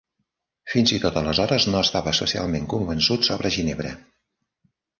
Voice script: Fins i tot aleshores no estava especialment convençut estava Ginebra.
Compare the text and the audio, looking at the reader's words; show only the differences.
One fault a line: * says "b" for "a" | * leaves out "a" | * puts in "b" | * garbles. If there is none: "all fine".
* says "sobre" for "estava"